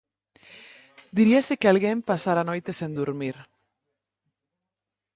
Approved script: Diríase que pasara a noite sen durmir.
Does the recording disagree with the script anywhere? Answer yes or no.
yes